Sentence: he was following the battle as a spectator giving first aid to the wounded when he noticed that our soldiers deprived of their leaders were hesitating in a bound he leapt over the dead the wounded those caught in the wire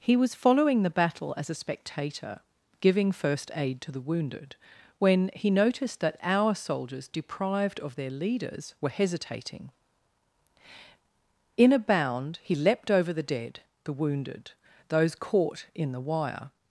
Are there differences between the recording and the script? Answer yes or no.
no